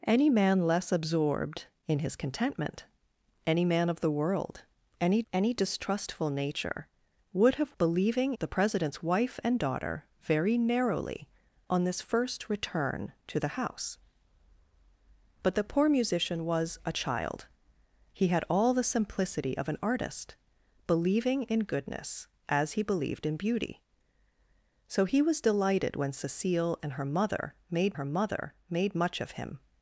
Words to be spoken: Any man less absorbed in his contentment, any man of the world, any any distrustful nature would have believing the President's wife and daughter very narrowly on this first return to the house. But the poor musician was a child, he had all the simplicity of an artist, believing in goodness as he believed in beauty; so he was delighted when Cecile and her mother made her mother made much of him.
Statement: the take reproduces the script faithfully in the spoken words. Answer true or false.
true